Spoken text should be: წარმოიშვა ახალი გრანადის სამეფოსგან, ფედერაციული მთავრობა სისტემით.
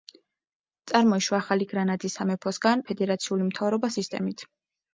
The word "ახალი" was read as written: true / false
true